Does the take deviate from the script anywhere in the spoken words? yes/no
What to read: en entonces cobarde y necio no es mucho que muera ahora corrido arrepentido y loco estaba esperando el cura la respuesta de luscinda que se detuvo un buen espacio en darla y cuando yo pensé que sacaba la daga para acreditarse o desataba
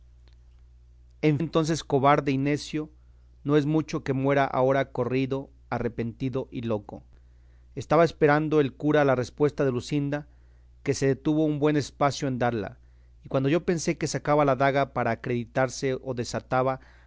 no